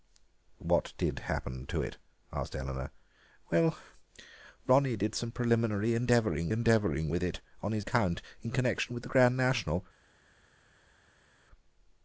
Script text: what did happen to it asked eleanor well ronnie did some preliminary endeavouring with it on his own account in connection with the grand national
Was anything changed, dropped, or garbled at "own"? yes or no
yes